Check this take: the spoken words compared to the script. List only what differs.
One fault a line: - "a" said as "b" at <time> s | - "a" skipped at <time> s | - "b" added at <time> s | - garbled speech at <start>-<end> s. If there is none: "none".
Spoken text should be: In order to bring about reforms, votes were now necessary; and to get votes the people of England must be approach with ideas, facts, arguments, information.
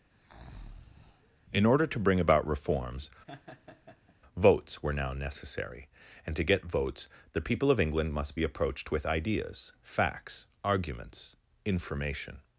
- "approach" said as "approached" at 8.4 s